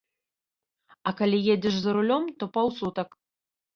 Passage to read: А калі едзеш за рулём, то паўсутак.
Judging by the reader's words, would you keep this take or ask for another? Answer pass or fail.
pass